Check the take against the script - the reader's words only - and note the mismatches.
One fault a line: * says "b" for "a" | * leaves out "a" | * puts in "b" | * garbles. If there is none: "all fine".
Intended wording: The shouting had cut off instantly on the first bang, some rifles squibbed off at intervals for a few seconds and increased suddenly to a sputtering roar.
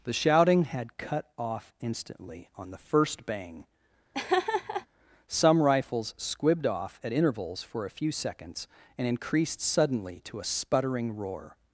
all fine